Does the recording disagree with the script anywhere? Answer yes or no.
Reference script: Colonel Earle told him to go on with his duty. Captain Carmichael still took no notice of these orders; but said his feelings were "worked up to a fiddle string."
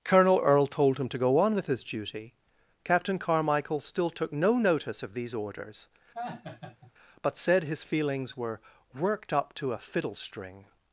no